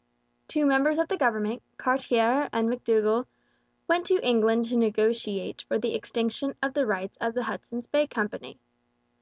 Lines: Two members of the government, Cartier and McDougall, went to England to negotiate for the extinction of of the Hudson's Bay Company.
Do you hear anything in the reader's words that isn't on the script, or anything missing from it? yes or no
yes